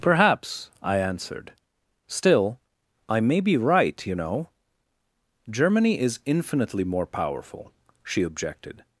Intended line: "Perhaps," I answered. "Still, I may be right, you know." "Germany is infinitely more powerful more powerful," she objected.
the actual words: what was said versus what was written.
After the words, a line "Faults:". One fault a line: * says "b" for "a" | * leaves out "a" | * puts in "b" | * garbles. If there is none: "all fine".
"Perhaps," I answered. "Still, I may be right, you know." "Germany is infinitely more powerful," she objected.
Faults:
* leaves out "more powerful"